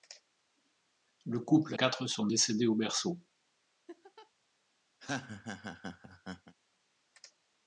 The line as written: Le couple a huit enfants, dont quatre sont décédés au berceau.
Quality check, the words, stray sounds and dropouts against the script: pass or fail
fail